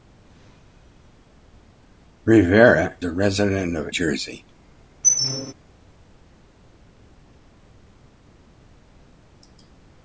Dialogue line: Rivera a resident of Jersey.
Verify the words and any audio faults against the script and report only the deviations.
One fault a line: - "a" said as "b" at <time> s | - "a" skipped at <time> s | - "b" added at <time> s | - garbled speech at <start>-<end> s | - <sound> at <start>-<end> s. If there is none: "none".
- squeak at 5.0-5.5 s